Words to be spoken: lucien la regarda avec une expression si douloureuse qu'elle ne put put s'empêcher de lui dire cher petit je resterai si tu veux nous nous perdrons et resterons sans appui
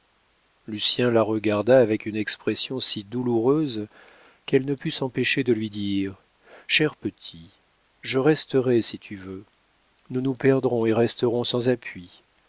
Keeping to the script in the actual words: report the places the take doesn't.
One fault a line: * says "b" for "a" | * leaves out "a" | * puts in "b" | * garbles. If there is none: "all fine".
* leaves out "put"